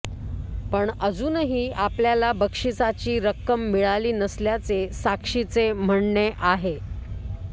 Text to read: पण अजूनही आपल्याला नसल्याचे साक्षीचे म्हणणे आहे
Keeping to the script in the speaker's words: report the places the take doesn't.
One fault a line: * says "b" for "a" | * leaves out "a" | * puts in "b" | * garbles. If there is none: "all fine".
* puts in "बक्षिसाची रक्कम मिळाली"